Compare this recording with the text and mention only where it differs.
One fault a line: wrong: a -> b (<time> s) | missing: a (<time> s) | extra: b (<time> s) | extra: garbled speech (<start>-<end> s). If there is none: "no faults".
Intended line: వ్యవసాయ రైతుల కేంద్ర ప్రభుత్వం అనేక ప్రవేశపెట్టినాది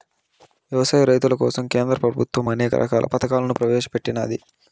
extra: కోసం (1.4 s)
extra: రకాల పథకాలను (2.8 s)